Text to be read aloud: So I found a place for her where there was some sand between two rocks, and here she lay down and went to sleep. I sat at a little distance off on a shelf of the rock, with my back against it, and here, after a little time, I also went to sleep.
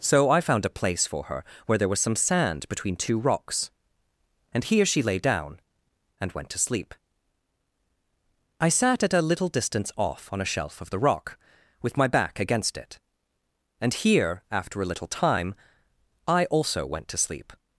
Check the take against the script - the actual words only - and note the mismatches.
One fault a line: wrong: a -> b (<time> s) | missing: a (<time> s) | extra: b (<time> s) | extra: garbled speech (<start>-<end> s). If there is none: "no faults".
no faults